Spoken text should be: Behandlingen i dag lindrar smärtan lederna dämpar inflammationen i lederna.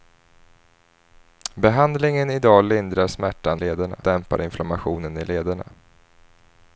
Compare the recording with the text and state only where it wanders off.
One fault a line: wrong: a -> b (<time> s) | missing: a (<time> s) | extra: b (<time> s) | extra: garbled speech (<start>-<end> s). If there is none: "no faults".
no faults